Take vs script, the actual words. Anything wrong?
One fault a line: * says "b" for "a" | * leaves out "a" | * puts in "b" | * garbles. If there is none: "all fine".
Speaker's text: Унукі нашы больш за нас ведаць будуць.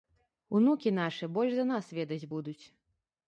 all fine